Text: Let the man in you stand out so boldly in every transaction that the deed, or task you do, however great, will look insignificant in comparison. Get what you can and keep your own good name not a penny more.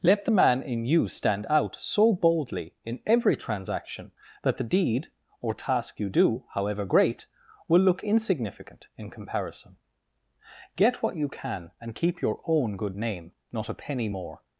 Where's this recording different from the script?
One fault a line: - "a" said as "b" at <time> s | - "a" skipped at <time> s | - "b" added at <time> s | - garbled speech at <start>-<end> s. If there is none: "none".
none